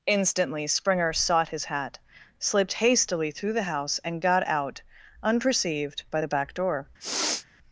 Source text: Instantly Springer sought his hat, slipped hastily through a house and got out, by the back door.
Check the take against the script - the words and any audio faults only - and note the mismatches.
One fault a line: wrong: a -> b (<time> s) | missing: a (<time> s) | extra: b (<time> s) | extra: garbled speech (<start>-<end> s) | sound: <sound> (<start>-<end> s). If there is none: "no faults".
wrong: a -> the (3.5 s)
extra: unperceived (5.2 s)
sound: sniff (7.0-7.5 s)